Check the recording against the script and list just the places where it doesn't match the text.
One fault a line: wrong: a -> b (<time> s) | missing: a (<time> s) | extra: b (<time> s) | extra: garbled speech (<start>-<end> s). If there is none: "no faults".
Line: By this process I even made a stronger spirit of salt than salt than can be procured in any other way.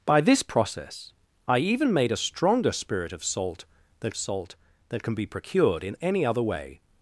no faults